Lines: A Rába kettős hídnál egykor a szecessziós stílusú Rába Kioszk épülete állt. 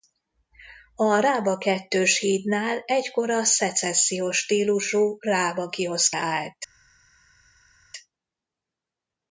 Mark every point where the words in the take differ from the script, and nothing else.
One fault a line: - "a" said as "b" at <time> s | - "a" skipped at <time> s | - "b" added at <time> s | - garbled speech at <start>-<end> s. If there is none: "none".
- "épülete" skipped at 6.2 s